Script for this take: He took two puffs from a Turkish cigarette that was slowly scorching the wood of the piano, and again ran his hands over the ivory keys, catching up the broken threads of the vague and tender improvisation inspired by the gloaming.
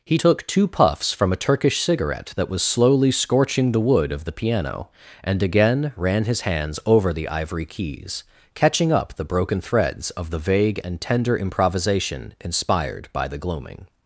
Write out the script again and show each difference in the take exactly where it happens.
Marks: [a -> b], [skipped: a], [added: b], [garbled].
He took two puffs from a Turkish cigarette that was slowly scorching the wood of the piano, and again ran his hands over the ivory keys, catching up the broken threads of the vague and tender improvisation inspired by the gloaming.